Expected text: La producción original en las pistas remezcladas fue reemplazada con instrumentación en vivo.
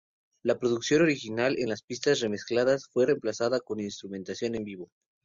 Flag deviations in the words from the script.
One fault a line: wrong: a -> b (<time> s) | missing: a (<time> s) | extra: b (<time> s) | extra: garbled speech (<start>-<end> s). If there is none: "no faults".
no faults